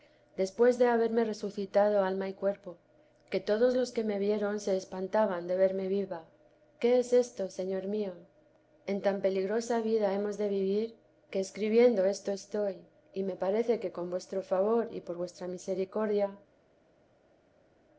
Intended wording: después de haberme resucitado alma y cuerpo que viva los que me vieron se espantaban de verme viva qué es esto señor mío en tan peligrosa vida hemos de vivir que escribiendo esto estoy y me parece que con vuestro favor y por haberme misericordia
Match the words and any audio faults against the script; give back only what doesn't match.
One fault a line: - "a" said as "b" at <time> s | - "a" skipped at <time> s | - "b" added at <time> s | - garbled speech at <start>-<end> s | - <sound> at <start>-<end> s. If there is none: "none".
- "viva" said as "todos" at 3.4 s
- "haberme" said as "vuestra" at 15.2 s